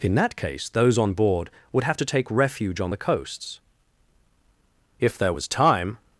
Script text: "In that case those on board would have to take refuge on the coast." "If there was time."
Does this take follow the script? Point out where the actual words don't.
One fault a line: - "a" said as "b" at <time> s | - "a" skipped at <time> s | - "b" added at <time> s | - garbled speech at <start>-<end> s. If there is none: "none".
- "coast" said as "coasts" at 3.0 s